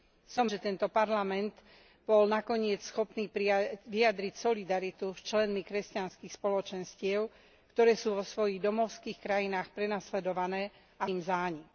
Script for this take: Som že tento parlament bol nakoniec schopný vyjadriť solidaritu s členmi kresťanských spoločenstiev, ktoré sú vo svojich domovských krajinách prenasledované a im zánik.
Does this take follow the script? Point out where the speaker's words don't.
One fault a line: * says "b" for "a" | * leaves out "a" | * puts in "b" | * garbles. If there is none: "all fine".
all fine